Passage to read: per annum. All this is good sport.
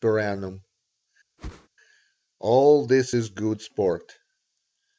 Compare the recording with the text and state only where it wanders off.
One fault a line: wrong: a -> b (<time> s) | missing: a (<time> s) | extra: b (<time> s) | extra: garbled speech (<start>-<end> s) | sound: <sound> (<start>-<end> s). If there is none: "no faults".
sound: whoosh (1.4-1.7 s)